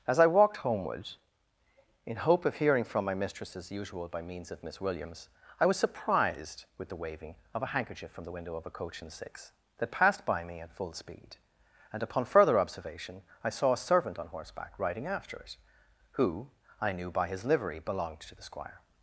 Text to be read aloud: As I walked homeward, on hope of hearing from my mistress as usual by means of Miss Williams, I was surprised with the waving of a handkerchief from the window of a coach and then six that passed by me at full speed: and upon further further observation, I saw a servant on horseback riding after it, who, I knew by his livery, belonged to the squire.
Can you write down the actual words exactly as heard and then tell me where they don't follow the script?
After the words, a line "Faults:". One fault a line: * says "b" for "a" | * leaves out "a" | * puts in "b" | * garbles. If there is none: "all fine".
As I walked homeward, in hope of hearing from my mistress as usual by means of Miss Williams, I was surprised with the waving of a handkerchief from the window of a coach and six that passed by me at full speed: and upon further observation, I saw a servant on horseback riding after it, who, I knew by his livery, belonged to the squire.
Faults:
* says "in" for "on"
* leaves out "then"
* leaves out "further"